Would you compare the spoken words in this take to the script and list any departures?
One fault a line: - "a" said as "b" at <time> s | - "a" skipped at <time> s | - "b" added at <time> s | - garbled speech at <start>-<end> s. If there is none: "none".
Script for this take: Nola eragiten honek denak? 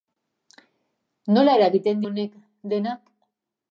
none